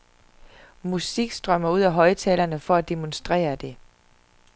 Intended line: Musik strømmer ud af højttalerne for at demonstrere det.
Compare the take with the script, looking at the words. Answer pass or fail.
pass